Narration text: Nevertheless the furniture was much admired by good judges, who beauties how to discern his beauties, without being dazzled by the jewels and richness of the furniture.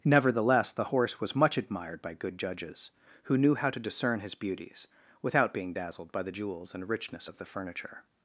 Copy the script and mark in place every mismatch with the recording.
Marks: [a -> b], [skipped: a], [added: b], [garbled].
Nevertheless the [furniture -> horse] was much admired by good judges, who [beauties -> knew] how to discern his beauties, without being dazzled by the jewels and richness of the furniture.